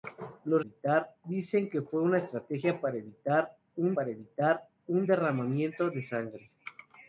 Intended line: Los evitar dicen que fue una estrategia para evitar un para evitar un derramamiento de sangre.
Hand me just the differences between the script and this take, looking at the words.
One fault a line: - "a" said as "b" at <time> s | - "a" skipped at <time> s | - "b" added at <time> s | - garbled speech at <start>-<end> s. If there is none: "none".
none